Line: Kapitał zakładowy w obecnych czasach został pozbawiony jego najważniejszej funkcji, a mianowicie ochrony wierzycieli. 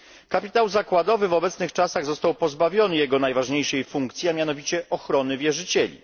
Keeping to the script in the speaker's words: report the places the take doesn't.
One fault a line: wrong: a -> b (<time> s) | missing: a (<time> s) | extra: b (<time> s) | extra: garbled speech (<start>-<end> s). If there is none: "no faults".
no faults